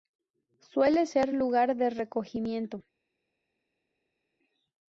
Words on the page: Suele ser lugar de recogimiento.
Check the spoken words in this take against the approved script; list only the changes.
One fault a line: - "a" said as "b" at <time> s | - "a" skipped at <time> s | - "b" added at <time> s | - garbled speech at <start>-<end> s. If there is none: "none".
none